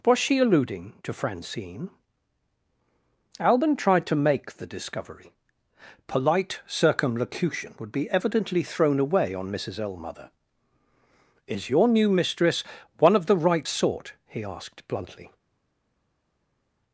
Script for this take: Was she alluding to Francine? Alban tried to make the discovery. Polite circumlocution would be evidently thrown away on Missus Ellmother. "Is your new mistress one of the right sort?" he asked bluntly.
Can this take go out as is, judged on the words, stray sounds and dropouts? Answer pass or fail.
pass